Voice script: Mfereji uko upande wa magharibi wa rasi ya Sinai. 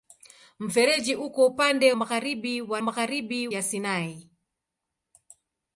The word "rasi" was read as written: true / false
false